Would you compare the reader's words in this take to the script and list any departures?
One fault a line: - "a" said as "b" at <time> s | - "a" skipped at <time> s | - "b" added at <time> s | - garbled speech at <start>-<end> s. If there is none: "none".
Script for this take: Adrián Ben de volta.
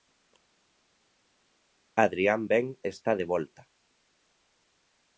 - "está" added at 2.8 s